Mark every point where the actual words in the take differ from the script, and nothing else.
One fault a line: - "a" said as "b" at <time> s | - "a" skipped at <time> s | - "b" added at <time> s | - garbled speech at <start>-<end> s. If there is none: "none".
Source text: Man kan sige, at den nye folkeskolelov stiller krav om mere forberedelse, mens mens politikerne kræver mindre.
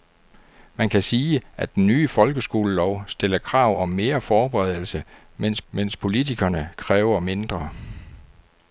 none